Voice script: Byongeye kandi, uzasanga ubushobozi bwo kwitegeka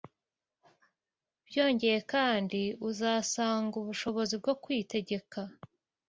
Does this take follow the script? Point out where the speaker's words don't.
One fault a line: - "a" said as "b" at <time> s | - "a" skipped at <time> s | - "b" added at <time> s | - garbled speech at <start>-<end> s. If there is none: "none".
none